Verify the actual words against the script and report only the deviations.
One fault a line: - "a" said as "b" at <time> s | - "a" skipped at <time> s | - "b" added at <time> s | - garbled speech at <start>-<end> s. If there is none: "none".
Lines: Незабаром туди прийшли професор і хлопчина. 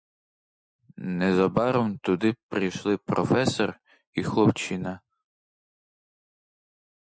none